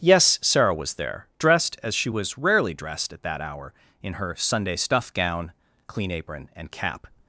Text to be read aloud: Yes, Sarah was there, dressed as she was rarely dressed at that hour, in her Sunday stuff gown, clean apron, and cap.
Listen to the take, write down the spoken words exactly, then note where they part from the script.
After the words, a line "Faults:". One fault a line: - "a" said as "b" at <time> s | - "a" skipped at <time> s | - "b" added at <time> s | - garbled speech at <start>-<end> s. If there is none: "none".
Yes, Sarah was there, dressed as she was rarely dressed at that hour, in her Sunday stuff gown, clean apron, and cap.
Faults:
none